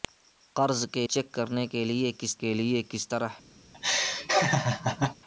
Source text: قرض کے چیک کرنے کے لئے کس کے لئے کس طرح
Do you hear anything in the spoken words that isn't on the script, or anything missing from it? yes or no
no